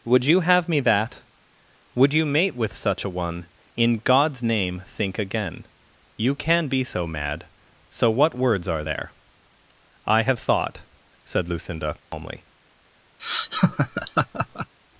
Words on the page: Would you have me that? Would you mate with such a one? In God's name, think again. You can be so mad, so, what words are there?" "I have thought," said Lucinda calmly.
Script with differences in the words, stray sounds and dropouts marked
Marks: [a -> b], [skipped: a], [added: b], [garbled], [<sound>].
Would you have me that? Would you mate with such a one? In God's name, think again. You can be so mad, so, what words are there?" "I have thought," said Lucinda calmly. [dropout] [laugh]